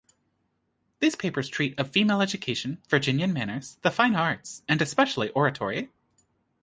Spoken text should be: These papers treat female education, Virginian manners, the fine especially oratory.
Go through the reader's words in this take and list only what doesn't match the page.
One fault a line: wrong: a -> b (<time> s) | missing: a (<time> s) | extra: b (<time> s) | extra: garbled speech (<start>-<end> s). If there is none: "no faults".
extra: of (1.8 s)
extra: arts and (4.2 s)